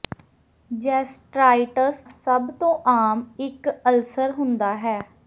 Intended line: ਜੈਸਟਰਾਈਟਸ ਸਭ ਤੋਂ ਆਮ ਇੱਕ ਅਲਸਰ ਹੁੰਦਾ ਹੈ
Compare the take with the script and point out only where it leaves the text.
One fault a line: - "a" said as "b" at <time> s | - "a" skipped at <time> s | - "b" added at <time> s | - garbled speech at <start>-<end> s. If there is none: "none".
none